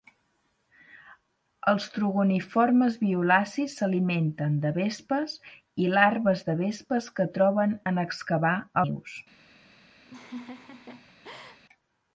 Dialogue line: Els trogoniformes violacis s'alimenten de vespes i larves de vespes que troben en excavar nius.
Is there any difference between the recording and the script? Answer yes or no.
no